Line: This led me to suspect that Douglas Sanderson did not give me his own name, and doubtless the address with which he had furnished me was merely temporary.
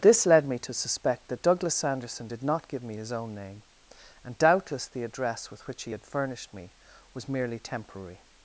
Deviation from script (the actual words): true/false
false